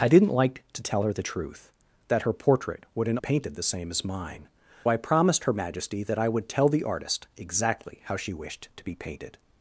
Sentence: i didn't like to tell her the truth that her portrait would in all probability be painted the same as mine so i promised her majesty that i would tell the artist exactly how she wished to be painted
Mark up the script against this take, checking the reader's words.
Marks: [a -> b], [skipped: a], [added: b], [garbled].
i didn't like to tell her the truth that her portrait would in [skipped: all probability be] painted the same as mine [skipped: so] i promised her majesty that i would tell the artist exactly how she wished to be painted